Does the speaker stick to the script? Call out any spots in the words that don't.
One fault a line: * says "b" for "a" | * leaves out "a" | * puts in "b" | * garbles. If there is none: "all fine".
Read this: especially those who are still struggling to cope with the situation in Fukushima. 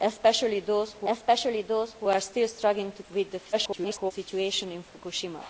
* puts in "especially those who"
* leaves out "cope"
* garbles